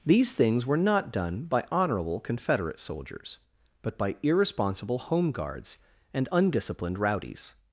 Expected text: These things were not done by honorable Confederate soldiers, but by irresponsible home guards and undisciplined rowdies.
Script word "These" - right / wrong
right